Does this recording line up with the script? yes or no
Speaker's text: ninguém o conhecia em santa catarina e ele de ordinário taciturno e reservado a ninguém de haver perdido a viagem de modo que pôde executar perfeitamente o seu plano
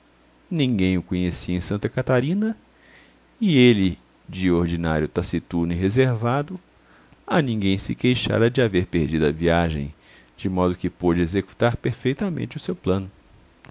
no